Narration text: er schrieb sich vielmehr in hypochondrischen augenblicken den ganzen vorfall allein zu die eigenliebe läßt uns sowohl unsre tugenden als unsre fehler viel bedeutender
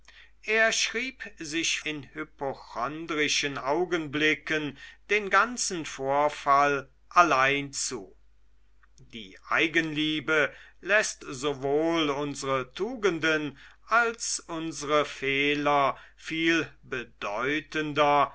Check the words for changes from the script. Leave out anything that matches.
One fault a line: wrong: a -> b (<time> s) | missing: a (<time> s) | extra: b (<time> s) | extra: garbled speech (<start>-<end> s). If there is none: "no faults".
missing: vielmehr (1.8 s)
missing: uns (11.2 s)